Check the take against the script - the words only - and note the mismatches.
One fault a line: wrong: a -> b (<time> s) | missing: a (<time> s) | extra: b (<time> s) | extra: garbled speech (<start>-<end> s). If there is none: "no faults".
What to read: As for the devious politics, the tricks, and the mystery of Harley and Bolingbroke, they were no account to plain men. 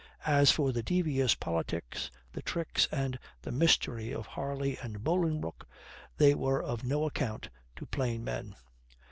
extra: of (6.6 s)